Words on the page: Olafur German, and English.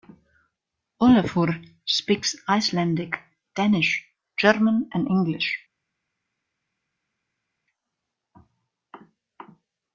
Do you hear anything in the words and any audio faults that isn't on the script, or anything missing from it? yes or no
yes